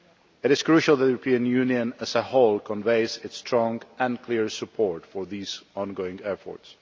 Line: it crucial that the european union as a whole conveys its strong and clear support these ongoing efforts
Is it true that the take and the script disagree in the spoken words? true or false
true